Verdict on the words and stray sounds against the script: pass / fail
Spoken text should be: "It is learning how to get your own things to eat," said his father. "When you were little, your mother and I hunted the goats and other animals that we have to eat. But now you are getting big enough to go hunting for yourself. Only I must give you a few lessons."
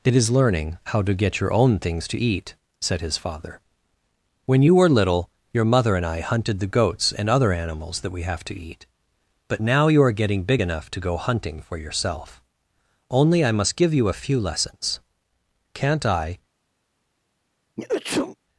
fail